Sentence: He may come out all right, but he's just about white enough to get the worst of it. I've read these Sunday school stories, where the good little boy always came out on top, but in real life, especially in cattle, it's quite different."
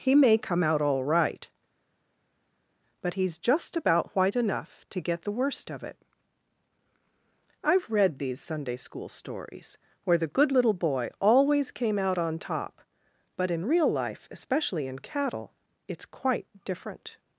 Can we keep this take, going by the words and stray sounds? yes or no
yes